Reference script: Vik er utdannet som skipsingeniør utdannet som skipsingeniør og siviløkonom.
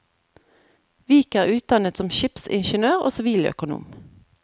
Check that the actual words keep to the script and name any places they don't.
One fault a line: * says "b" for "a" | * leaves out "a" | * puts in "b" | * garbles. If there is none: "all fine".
* leaves out "utdannet som skipsingeniør"